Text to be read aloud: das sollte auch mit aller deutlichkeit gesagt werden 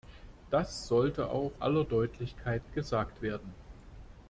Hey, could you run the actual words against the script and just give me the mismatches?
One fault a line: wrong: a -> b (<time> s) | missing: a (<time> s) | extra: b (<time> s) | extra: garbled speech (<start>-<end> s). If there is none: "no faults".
missing: mit (1.5 s)